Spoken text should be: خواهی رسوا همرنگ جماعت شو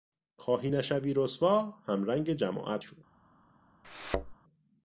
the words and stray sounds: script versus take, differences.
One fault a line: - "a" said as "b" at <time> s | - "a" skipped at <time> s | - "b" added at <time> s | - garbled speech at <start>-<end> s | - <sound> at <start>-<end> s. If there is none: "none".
- "نشوی" added at 0.7 s
- thud at 3.8-4.3 s